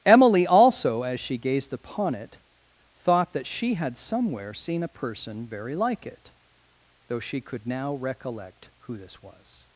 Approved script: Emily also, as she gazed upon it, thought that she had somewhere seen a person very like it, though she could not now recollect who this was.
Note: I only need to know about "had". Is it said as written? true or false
true